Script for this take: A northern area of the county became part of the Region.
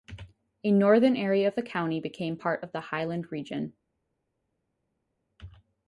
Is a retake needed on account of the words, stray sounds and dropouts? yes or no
yes